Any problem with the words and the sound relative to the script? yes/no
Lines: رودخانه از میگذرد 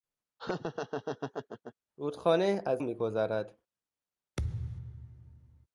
yes